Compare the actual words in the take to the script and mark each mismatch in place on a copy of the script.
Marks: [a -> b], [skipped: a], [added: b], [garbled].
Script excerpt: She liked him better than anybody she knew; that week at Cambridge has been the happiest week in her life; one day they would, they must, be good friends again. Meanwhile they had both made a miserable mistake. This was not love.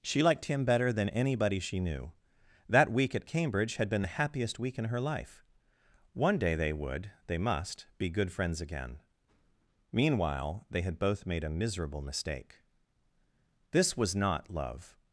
She liked him better than anybody she knew; that week at Cambridge [has -> had] been the happiest week in her life; one day they would, they must, be good friends again. Meanwhile they had both made a miserable mistake. This was not love.